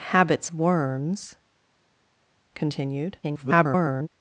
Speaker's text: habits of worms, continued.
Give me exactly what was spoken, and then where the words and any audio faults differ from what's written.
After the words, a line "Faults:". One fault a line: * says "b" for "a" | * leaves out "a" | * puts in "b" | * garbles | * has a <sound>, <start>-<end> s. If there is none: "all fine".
habits worms, continued. [garbled]
Faults:
* leaves out "of"
* garbles